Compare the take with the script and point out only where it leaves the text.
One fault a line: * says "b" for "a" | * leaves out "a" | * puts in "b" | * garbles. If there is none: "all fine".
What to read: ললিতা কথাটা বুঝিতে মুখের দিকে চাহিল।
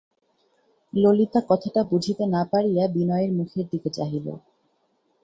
* puts in "না পারিয়া বিনয়ের"